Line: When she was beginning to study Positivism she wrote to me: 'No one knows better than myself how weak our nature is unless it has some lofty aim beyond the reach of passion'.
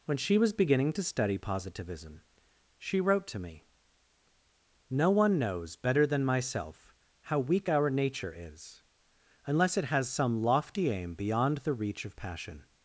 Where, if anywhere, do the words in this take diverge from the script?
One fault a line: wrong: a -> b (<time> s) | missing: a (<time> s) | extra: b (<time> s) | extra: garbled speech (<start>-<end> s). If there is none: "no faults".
no faults